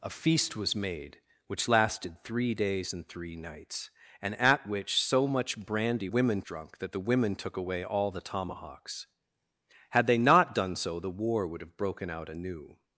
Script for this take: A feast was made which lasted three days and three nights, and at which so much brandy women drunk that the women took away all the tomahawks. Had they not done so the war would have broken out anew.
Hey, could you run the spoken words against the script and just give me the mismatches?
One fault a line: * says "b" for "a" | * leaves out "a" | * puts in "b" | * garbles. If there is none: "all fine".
all fine